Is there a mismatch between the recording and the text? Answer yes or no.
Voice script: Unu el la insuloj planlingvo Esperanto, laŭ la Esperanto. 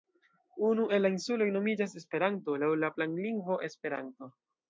yes